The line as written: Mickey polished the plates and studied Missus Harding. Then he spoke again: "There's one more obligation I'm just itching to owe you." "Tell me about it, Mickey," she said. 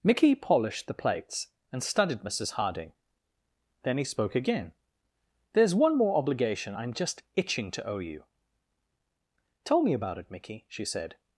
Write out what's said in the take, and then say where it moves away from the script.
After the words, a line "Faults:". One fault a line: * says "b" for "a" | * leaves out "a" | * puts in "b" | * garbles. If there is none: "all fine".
Mickey polished the plates and studied Missus Harding. Then he spoke again: "There's one more obligation I'm just itching to owe you." "Tell me about it, Mickey," she said.
Faults:
all fine